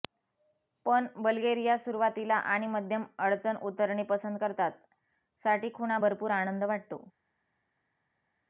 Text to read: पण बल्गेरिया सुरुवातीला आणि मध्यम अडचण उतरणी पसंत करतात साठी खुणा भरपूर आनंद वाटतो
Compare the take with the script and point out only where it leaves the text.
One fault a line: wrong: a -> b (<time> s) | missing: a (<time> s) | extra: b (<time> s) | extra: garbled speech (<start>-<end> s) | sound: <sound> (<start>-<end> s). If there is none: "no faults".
no faults